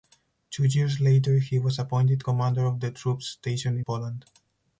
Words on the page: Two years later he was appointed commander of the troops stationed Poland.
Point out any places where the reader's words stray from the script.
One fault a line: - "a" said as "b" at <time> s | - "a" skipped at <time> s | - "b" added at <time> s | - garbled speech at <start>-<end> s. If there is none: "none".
none